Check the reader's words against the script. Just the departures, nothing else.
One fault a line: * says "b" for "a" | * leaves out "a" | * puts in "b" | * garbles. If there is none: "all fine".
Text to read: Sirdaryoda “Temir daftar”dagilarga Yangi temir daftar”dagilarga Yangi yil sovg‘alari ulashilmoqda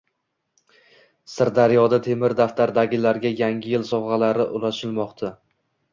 * leaves out "temir daftar”dagilarga Yangi"